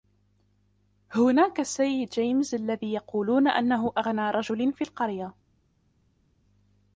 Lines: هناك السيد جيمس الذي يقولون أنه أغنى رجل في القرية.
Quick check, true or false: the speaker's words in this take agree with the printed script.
true